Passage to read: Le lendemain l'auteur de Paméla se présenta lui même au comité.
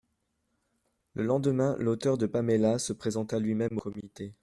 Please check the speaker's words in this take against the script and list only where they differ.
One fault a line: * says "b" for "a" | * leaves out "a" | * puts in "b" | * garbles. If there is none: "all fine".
all fine